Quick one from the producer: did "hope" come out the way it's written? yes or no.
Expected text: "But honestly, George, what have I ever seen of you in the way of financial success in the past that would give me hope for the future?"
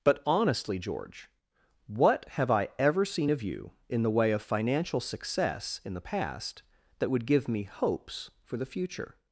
no